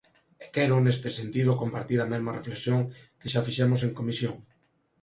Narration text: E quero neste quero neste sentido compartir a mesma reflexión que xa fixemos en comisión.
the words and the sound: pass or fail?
fail